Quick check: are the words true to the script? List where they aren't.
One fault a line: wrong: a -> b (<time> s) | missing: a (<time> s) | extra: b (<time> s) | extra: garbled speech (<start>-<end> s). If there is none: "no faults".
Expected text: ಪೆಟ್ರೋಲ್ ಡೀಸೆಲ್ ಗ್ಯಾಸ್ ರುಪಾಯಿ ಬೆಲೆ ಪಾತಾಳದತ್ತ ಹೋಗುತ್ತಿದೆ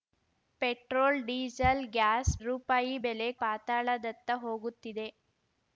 no faults